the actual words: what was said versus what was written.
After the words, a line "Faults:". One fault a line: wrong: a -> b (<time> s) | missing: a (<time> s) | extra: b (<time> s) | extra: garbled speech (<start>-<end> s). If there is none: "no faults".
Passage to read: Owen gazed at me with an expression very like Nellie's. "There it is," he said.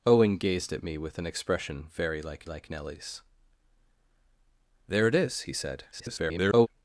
Owen gazed at me with an expression very like like Nellie's. "There it is," he said. [garbled]
Faults:
extra: like (2.5 s)
extra: garbled speech (5.9-6.7 s)